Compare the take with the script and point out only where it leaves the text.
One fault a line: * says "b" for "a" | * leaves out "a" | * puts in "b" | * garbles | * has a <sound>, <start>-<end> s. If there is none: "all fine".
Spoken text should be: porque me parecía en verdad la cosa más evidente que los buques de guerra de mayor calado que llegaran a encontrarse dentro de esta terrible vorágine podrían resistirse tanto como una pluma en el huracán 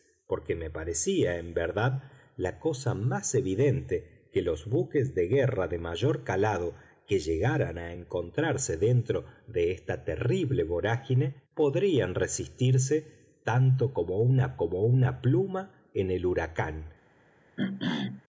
* puts in "como una"
* has a throat clearing, 17.6-18.2 s